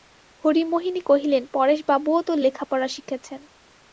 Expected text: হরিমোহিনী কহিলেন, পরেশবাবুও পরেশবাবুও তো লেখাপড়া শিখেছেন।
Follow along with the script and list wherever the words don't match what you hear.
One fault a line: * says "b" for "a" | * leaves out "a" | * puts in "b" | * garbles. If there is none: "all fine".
* leaves out "পরেশবাবুও"